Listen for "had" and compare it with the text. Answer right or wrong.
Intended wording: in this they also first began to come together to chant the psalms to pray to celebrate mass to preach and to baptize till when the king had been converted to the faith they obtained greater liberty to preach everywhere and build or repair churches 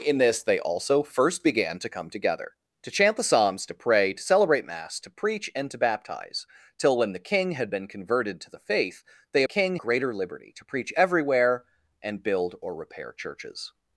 right